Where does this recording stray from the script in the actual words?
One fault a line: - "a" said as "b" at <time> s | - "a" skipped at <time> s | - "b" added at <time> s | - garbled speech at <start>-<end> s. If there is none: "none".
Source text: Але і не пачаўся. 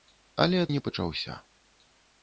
none